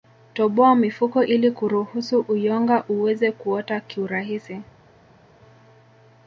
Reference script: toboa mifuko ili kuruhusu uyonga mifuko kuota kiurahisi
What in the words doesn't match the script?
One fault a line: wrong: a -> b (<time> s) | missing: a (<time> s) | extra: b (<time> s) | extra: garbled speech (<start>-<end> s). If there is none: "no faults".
wrong: mifuko -> uweze (2.9 s)